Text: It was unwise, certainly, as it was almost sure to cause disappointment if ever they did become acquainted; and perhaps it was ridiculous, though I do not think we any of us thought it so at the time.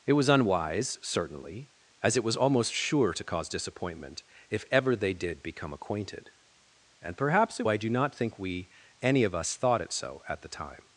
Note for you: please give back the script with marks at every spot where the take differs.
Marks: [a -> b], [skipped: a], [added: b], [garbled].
It was unwise, certainly, as it was almost sure to cause disappointment if ever they did become acquainted; and perhaps it [skipped: was ridiculous, though] I do not think we any of us thought it so at the time.